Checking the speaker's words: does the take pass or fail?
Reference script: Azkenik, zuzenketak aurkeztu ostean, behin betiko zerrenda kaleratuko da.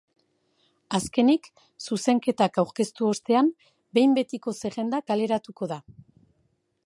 pass